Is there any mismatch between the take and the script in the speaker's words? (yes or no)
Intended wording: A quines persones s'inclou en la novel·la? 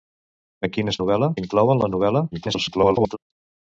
yes